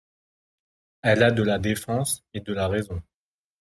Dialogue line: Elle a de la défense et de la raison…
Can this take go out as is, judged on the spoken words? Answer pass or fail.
pass